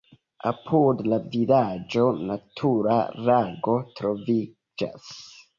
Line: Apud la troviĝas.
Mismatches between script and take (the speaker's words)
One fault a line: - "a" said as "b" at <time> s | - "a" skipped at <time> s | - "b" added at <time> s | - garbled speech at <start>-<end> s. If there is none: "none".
- "vilaĝo natura lago" added at 1.3 s